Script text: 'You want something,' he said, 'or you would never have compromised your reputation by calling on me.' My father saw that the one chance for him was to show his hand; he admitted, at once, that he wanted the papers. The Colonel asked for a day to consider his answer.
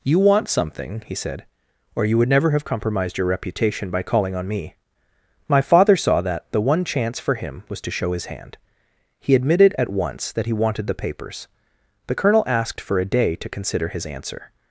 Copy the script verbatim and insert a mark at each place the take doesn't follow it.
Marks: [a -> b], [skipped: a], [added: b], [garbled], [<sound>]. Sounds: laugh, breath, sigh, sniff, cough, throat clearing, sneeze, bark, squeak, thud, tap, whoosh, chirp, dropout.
'You want something,' he said, 'or you would never have compromised your reputation by calling on me.' My father saw that the one chance for him was to show his hand; he admitted, at once, that he wanted the papers. The Colonel asked for a day to consider his answer.